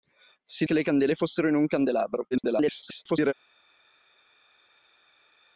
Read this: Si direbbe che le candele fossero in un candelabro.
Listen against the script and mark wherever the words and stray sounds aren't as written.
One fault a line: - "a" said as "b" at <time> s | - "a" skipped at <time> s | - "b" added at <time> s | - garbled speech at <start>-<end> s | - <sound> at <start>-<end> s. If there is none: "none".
- "direbbe" skipped at 0.7 s
- garbled speech at 2.3-3.3 s